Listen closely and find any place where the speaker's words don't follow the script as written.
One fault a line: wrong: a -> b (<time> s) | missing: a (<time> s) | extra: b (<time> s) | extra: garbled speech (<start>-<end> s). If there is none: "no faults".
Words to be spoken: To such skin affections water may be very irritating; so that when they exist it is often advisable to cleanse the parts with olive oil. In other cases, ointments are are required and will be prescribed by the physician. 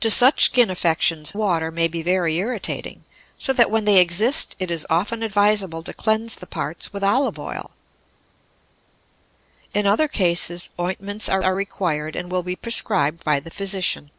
no faults